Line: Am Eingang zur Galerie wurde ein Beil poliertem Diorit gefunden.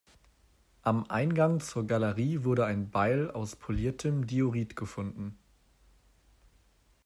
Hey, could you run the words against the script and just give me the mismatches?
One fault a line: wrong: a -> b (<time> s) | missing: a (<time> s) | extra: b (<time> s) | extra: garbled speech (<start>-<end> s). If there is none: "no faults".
extra: aus (3.3 s)